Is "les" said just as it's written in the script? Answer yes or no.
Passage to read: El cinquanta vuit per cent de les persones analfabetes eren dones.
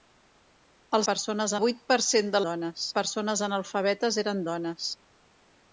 no